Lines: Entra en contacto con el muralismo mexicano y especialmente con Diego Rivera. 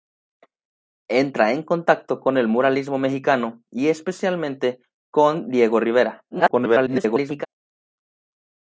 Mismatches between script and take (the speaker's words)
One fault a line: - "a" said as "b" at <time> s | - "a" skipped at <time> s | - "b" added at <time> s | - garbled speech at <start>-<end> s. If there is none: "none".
- garbled speech at 6.3-7.5 s